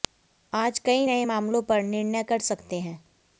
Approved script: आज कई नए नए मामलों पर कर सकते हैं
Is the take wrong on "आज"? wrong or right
right